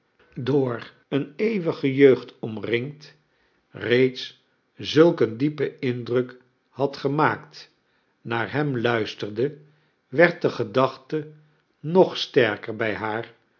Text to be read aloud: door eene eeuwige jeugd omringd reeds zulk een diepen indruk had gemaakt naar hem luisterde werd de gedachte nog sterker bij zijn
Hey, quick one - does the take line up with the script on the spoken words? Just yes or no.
no